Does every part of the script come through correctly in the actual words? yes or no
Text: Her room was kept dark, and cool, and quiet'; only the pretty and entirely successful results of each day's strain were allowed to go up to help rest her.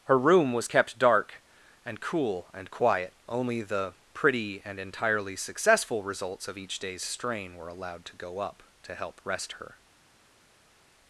yes